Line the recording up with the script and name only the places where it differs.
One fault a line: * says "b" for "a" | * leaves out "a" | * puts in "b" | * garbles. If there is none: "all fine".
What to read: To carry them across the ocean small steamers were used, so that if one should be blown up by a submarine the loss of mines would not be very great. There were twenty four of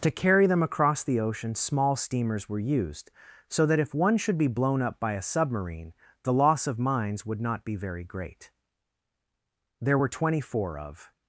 all fine